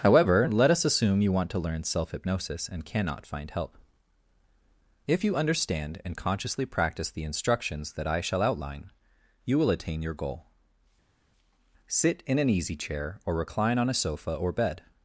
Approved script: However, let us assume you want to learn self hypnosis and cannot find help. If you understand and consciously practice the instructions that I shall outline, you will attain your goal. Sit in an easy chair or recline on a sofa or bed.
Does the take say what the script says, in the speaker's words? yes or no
yes